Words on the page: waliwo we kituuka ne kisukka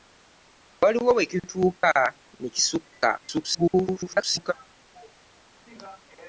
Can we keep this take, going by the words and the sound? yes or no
no